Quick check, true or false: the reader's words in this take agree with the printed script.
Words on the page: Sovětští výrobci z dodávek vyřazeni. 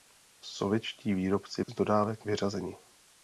true